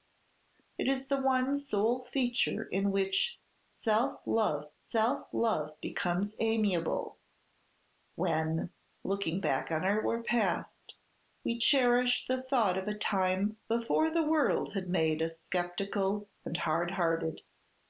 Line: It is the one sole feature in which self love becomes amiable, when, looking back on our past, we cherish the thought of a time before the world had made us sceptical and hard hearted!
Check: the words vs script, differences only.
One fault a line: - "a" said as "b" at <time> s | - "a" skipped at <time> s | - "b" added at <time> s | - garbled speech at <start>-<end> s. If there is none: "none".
- "self love" added at 4.8 s